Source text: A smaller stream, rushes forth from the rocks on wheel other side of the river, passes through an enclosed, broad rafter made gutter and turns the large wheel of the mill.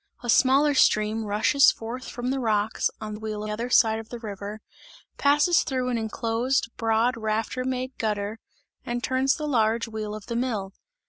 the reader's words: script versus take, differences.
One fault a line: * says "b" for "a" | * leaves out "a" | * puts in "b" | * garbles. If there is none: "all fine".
all fine